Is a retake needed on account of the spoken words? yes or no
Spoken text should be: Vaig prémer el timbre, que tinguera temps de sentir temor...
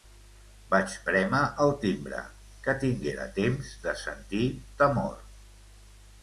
no